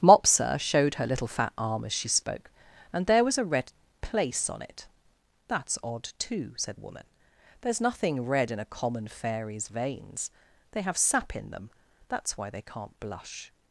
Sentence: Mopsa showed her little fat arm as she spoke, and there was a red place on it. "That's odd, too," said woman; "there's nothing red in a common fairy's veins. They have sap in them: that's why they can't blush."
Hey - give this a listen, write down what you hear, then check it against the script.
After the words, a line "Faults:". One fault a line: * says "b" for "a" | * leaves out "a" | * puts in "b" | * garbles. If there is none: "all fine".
Mopsa showed her little fat arm as she spoke, and there was a red place on it. "That's odd, too," said woman; "there's nothing red in a common fairy's veins. They have sap in them: that's why they can't blush."
Faults:
all fine